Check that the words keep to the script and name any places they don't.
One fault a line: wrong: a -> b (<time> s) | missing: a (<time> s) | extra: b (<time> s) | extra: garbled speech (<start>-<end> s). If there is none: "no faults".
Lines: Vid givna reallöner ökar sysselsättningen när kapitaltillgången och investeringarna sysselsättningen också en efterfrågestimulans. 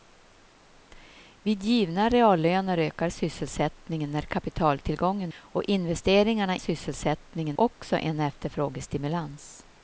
no faults